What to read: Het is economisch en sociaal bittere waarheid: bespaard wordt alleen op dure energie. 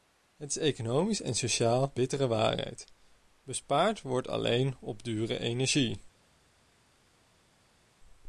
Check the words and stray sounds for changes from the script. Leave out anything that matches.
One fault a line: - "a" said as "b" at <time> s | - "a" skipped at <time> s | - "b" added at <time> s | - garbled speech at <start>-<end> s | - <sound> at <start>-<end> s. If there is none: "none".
none